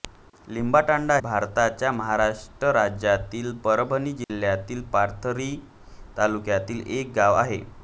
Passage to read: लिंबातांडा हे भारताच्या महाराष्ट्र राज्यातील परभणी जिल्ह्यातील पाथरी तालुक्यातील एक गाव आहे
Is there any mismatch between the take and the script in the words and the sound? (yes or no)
yes